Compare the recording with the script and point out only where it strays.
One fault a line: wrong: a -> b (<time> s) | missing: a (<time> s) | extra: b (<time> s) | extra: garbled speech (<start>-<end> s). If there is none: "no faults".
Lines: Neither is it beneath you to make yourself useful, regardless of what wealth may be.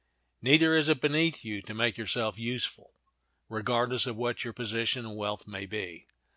extra: your position and (4.4 s)